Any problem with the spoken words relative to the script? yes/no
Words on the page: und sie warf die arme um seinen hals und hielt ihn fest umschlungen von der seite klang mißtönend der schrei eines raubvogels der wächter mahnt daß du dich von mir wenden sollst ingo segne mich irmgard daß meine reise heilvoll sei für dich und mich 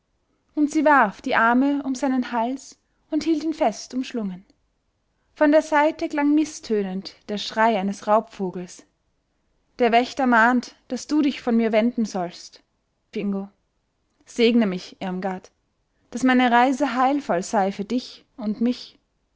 no